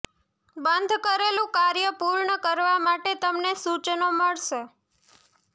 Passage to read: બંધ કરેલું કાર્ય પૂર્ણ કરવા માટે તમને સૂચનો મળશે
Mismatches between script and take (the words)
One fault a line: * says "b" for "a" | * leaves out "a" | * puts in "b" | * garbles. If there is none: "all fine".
all fine